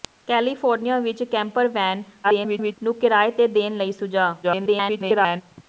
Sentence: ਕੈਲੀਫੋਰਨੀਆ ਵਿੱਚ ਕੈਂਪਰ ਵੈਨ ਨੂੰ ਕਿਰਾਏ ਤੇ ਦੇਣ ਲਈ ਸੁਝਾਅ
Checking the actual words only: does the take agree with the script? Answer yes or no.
no